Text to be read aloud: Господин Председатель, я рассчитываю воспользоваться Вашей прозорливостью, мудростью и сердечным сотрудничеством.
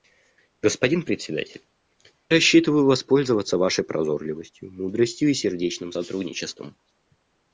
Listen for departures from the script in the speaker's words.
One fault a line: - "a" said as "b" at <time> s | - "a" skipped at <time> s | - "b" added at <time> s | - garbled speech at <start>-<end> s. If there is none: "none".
- "я" skipped at 1.6 s